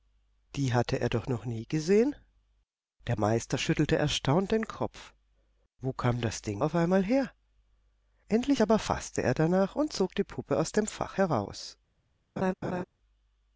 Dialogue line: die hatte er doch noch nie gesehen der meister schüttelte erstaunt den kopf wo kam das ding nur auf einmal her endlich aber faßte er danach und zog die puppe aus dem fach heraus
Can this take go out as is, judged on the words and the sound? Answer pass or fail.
fail